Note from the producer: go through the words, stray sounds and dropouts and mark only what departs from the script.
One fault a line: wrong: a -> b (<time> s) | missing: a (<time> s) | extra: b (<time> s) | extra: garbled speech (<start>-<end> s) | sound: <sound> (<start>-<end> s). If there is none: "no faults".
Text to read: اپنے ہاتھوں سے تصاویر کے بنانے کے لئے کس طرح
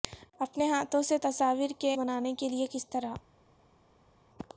no faults